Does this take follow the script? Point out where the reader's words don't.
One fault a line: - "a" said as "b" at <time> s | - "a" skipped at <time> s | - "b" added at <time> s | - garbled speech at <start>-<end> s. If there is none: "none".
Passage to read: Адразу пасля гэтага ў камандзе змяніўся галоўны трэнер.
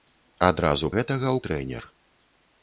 - "пасля" skipped at 0.9 s
- "камандзе змяніўся галоўны" skipped at 1.4 s